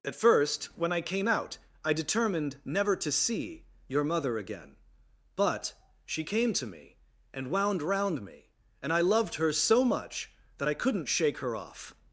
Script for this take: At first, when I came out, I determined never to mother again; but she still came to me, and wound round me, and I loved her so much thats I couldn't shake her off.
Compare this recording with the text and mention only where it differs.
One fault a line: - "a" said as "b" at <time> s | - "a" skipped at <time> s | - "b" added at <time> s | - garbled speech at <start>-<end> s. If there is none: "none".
- "see your" added at 3.1 s
- "still" skipped at 6.2 s
- "thats" said as "that" at 10.6 s